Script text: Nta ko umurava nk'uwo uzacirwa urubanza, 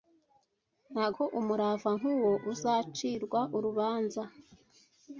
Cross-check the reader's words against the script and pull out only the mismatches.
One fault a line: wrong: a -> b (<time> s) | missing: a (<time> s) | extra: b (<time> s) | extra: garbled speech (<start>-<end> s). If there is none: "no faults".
no faults